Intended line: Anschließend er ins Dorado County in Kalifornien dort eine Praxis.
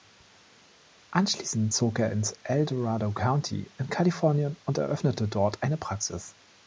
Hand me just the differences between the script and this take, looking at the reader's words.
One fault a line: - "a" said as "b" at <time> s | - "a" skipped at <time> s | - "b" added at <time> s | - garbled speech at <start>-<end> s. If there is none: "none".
- "zog" added at 1.7 s
- "El" added at 2.4 s
- "und eröffnete" added at 4.7 s